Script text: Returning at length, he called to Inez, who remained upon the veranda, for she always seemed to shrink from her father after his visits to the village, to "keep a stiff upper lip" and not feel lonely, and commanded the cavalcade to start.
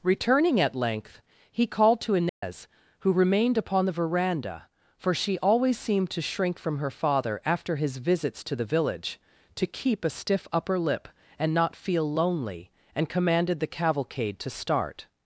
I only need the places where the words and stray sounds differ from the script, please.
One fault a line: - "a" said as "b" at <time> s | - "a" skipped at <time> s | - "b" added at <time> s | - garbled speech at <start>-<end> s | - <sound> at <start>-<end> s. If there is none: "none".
- dropout at 2.3-2.4 s